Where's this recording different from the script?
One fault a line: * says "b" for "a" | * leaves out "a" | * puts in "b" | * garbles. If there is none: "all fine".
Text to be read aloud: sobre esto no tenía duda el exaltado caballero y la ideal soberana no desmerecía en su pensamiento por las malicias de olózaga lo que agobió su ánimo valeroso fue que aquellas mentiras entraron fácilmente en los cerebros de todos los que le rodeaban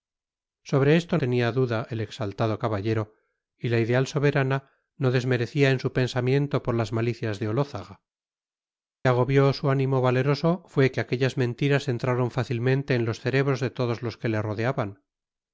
* leaves out "no"
* leaves out "lo que"